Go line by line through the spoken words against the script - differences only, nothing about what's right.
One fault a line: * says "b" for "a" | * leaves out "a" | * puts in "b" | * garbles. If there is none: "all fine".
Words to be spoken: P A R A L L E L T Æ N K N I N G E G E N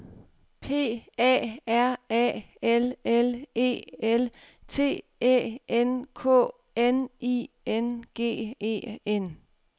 * leaves out "G E"